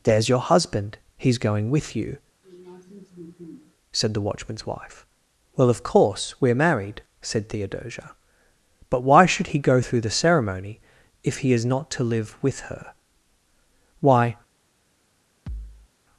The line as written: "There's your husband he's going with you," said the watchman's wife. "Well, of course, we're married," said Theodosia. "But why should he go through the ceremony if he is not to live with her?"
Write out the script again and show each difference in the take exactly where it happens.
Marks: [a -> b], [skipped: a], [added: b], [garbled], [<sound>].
"There's your husband he's going with you," [sniff] said the watchman's wife. "Well, of course, we're married," said Theodosia. "But why should he go through the ceremony if he is not to live with her?" [added: Why] [thud]